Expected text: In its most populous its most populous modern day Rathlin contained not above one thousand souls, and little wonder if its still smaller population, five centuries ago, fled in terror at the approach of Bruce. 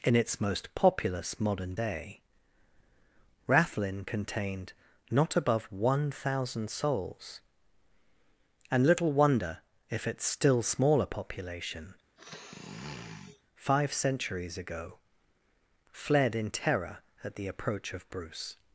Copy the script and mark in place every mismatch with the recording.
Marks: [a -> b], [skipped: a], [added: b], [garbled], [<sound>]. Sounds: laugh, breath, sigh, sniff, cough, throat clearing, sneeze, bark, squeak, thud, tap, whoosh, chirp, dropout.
In its most populous [skipped: its most populous] modern day Rathlin contained not above one thousand souls, and little wonder if its still smaller population, [sniff] five centuries ago, fled in terror at the approach of Bruce.